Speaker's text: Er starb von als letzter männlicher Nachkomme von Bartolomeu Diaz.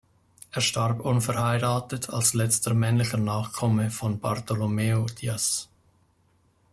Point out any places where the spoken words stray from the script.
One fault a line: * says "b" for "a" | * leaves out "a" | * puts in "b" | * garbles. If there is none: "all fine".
* says "unverheiratet" for "von"